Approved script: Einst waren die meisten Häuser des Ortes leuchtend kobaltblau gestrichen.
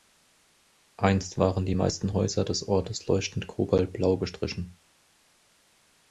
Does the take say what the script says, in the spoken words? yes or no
yes